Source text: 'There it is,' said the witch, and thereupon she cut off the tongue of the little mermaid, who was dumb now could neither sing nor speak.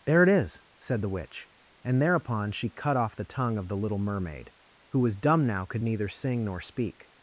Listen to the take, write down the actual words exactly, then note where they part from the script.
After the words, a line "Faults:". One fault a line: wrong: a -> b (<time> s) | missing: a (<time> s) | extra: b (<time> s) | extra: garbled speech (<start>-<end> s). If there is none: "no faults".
'There it is,' said the witch, and thereupon she cut off the tongue of the little mermaid, who was dumb now could neither sing nor speak.
Faults:
no faults